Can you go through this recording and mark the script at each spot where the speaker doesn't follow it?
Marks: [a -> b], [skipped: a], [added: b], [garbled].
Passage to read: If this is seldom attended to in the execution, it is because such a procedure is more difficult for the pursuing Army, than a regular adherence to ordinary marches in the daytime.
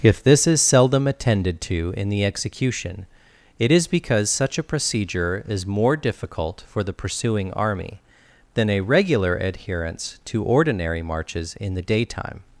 If this is seldom attended to in the execution, it is because such a procedure is more difficult for the pursuing Army, than a regular adherence to ordinary marches in the daytime.